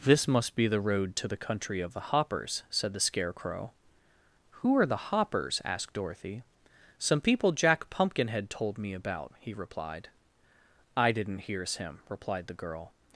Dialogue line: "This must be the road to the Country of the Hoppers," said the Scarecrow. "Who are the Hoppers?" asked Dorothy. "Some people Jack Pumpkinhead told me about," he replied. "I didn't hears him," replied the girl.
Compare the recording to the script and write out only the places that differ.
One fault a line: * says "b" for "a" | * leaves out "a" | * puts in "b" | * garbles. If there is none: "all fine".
all fine